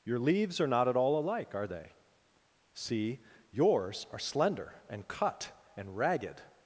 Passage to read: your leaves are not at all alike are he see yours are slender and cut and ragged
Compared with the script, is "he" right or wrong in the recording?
wrong